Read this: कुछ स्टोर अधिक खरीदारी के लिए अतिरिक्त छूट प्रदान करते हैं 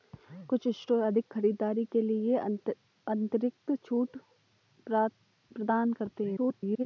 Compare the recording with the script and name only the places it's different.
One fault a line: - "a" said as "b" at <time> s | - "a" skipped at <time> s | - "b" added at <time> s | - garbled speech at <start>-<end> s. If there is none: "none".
- garbled speech at 6.4-6.9 s